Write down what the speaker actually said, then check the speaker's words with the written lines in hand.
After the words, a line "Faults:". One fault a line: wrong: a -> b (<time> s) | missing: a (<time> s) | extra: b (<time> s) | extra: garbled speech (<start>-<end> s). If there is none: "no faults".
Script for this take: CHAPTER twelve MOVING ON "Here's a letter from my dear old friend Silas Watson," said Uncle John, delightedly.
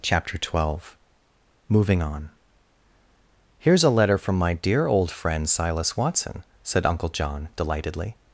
CHAPTER twelve MOVING ON "Here's a letter from my dear old friend Silas Watson," said Uncle John, delightedly.
Faults:
no faults